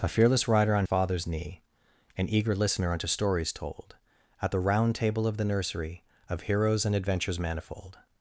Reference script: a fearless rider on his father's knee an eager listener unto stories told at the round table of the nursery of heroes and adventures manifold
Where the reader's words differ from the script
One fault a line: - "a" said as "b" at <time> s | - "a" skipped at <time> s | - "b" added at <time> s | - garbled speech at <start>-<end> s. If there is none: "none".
- "his" skipped at 0.9 s